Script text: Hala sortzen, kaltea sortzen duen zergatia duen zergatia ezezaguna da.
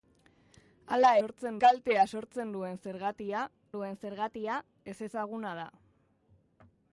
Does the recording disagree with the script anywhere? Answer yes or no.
no